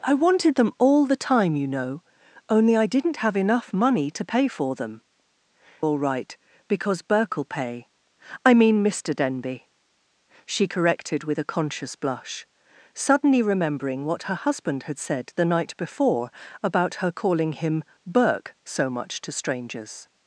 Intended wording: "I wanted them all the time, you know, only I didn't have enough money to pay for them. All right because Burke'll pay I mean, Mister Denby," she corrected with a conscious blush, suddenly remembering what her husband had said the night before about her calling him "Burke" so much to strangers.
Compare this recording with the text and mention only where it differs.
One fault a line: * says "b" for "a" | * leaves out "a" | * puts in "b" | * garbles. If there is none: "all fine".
all fine